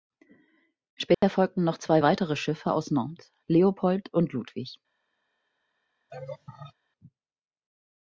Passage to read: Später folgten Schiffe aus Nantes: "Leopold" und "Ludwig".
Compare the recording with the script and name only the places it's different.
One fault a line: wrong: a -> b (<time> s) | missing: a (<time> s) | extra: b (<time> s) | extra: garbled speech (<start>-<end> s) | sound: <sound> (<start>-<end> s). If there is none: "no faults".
sound: dropout (1.1-1.2 s)
extra: noch zwei weitere (1.6 s)
sound: laugh (6.1-6.7 s)